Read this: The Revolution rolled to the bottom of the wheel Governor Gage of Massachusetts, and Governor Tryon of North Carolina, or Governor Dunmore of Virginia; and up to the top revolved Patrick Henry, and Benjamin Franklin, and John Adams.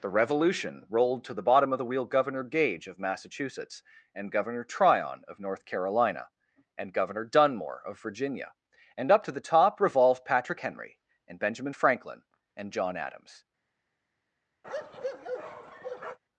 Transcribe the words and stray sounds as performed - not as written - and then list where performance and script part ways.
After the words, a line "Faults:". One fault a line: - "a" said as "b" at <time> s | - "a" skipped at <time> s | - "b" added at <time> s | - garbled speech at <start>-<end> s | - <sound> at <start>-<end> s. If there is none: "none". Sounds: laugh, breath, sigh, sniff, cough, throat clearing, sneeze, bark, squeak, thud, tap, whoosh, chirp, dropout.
The Revolution rolled to the bottom of the wheel Governor Gage of Massachusetts, and Governor Tryon of North Carolina, and Governor Dunmore of Virginia; and up to the top revolved Patrick Henry, and Benjamin Franklin, and John Adams.
Faults:
- "or" said as "and" at 6.8 s
- bark at 14.6-16.2 s